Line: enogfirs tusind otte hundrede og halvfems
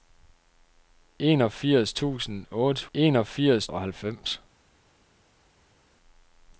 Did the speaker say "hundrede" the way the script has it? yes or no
no